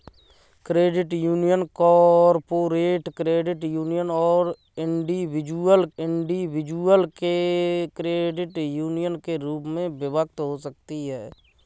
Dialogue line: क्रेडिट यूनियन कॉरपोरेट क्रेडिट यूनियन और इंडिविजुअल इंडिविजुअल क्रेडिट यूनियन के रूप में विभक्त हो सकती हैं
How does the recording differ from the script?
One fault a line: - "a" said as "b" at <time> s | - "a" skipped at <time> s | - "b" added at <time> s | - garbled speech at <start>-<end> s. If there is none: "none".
none